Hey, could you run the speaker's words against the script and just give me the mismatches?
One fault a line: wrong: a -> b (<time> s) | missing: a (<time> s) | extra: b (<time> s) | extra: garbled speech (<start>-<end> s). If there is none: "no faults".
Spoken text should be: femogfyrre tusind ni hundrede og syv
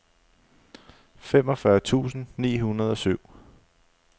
no faults